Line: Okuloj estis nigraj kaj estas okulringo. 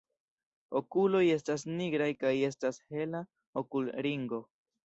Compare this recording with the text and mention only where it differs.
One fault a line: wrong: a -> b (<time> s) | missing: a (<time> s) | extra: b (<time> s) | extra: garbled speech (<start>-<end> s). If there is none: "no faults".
wrong: estis -> estas (1.3 s)
extra: hela (2.9 s)